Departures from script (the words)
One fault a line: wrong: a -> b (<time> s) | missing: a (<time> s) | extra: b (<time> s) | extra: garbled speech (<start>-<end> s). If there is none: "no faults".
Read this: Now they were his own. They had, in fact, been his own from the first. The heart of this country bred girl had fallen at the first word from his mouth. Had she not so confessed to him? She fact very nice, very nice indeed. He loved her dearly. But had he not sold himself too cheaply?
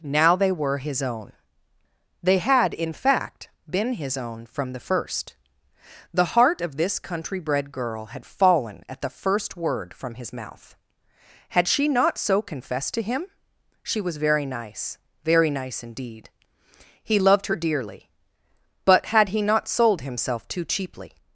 wrong: fact -> was (14.0 s)